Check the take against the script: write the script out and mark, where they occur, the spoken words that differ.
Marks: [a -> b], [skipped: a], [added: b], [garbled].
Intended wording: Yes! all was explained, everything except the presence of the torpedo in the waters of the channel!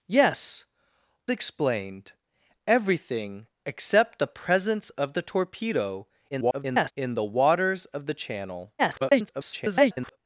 Yes! [skipped: all was] explained, everything except the presence of the torpedo [garbled] in the waters of the channel! [garbled]